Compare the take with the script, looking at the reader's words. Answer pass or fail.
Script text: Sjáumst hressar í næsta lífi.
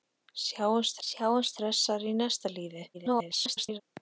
fail